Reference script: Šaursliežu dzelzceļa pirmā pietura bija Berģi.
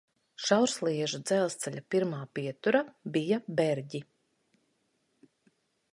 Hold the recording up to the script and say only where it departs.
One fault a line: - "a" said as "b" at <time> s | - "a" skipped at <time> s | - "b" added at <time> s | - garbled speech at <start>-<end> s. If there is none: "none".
none